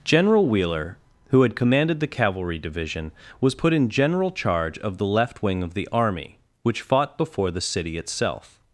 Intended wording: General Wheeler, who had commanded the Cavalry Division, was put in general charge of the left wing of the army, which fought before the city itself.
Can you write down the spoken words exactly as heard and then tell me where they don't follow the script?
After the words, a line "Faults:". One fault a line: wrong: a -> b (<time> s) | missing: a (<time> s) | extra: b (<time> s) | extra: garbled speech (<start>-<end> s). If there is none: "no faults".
General Wheeler, who had commanded the Cavalry Division, was put in general charge of the left wing of the army, which fought before the city itself.
Faults:
no faults